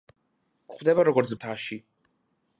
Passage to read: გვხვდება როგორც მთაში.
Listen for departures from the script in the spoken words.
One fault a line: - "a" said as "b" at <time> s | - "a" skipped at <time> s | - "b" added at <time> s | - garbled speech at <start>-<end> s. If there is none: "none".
none